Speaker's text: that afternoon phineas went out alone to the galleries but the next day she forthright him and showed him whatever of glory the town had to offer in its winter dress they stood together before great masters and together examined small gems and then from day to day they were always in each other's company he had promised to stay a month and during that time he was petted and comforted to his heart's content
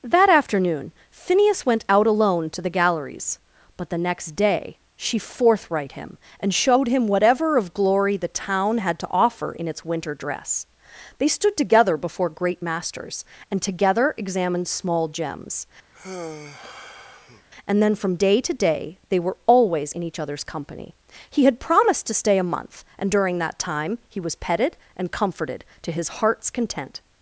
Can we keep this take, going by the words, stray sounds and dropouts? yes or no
no